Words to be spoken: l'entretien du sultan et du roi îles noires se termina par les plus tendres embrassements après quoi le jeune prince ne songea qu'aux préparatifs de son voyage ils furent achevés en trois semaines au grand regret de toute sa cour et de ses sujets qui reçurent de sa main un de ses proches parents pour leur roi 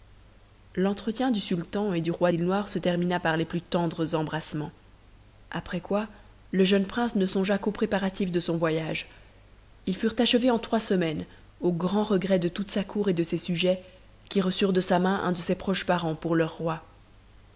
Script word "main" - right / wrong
right